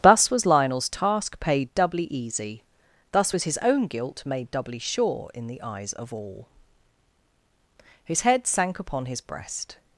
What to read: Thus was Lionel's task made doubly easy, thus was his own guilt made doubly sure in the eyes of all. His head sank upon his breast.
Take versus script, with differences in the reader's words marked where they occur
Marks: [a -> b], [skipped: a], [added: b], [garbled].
Thus was Lionel's task [made -> paid] doubly easy, thus was his own guilt made doubly sure in the eyes of all. His head sank upon his breast.